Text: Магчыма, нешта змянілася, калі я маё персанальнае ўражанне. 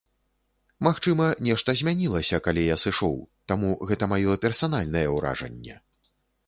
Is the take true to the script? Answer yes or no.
no